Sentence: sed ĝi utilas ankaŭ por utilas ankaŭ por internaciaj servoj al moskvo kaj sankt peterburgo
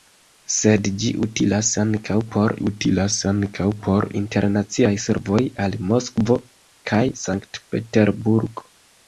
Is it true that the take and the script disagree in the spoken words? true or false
false